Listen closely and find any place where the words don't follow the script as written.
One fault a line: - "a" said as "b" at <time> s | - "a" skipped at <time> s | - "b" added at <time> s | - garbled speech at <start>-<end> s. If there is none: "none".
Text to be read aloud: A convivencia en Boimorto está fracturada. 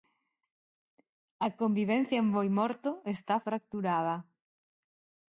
none